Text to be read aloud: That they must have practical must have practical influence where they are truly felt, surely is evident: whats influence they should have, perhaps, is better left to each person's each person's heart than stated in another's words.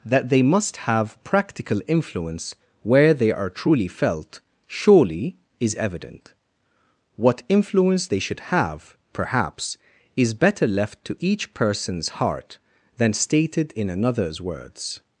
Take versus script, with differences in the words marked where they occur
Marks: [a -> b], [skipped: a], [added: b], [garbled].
That they must have practical [skipped: must have practical] influence where they are truly felt, surely is evident: [whats -> what] influence they should have, perhaps, is better left to each person's [skipped: each person's] heart than stated in another's words.